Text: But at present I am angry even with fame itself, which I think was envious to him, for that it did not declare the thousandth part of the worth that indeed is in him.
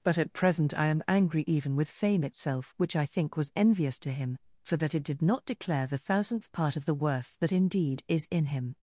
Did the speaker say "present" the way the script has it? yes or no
yes